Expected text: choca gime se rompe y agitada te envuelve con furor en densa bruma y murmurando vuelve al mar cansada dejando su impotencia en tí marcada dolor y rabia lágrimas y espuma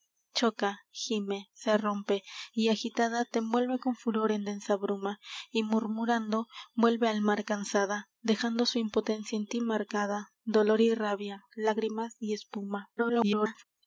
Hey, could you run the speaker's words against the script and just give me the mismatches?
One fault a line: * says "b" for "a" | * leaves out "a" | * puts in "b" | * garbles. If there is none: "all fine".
* garbles